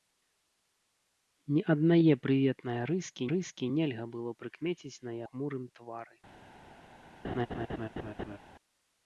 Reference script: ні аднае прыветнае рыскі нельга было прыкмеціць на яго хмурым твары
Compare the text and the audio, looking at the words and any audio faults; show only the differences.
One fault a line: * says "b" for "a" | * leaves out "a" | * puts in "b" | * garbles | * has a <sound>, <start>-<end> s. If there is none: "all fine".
* puts in "рыскі"
* leaves out "яго"
* has a laugh, 7.2-8.4 s